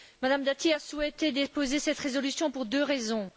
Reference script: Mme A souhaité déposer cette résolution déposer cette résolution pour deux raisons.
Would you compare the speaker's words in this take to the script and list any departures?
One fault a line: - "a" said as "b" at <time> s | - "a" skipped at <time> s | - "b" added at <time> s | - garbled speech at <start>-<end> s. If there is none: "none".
- "Dati" added at 0.4 s
- "déposer cette résolution" skipped at 2.5 s